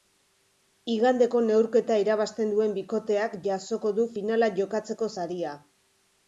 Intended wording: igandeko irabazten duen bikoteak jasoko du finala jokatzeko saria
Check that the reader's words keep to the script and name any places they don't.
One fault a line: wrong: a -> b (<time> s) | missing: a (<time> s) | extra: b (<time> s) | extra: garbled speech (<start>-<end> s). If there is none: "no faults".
extra: neurketa (1.5 s)